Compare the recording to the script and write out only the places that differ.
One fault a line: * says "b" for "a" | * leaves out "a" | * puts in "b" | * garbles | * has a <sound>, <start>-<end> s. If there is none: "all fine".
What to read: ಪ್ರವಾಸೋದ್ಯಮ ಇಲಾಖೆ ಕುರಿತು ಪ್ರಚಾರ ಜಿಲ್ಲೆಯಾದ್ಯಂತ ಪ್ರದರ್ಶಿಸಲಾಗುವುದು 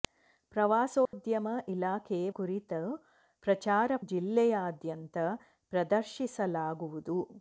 * has a dropout, 1.1-1.1 s